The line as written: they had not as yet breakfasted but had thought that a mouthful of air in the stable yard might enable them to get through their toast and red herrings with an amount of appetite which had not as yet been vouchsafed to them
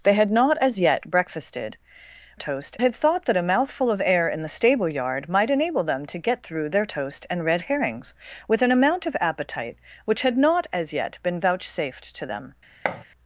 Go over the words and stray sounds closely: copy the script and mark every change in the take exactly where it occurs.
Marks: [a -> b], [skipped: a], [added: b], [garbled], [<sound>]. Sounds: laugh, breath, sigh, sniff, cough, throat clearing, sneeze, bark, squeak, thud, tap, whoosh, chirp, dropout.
they had not as yet breakfasted [but -> toast] had thought that a mouthful of air in the stable yard might enable them to get through their toast and red herrings with an amount of appetite which had not as yet been vouchsafed to them [thud]